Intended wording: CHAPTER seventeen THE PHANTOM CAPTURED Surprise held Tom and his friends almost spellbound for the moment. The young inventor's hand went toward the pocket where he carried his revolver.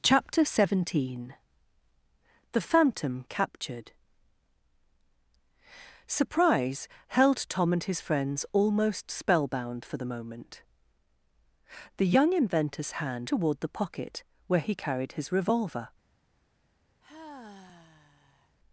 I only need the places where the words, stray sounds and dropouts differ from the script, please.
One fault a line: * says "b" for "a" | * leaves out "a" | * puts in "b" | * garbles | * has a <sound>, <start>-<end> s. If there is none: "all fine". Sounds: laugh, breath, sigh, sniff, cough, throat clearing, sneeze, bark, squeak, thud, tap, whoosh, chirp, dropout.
* leaves out "went"
* has a sigh, 17.0-18.6 s